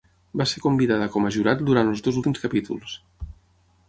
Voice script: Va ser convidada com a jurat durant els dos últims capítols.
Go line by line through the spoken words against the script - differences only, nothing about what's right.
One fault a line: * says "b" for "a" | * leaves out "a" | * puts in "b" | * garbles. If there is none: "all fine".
all fine